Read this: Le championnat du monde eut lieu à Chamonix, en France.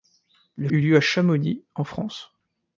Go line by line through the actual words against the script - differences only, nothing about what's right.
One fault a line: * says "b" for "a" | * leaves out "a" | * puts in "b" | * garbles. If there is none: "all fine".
* leaves out "championnat du monde"